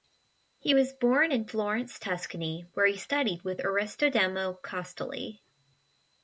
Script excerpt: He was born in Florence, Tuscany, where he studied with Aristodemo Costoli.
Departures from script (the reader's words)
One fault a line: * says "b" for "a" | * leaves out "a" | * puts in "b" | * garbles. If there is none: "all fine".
all fine